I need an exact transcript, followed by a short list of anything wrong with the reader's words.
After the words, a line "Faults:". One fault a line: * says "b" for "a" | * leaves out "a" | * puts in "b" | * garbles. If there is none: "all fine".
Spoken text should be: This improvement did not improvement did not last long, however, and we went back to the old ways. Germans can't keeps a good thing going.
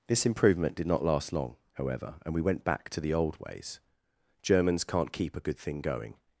This improvement did not last long, however, and we went back to the old ways. Germans can't keep a good thing going.
Faults:
* leaves out "improvement did not"
* says "keep" for "keeps"